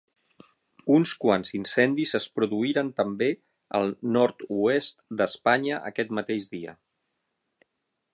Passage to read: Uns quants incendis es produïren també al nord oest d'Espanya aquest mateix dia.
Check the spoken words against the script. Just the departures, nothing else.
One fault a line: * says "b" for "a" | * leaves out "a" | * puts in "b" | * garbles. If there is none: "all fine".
all fine